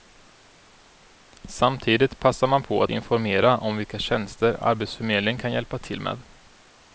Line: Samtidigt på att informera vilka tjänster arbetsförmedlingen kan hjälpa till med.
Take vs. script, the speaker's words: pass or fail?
fail